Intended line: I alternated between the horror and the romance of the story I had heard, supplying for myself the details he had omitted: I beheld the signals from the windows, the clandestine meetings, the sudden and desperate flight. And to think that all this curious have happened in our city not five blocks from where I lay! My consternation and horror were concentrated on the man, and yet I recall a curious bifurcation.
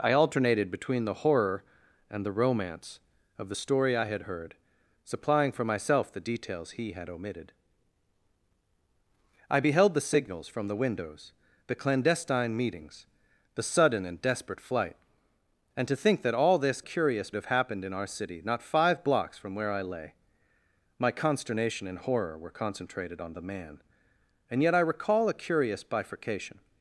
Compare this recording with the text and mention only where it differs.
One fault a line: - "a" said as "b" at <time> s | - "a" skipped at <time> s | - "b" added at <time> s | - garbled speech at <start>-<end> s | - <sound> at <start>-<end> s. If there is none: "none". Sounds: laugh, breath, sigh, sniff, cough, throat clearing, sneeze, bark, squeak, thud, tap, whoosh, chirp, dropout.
none